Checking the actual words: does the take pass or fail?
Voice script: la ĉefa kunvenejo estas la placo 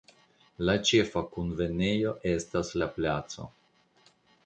pass